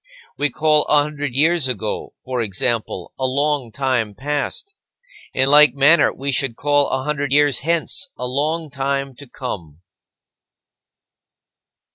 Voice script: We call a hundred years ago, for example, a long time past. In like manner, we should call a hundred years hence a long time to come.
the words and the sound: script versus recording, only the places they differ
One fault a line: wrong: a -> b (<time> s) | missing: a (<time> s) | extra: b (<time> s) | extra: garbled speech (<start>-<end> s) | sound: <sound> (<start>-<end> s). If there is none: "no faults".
no faults